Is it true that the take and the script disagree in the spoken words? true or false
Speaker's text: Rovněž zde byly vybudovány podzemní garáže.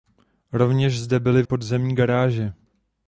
true